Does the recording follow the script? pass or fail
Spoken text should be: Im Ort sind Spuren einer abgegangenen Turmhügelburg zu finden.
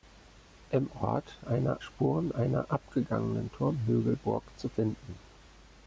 fail